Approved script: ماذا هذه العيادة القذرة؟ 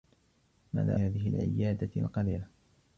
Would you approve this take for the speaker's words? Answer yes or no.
yes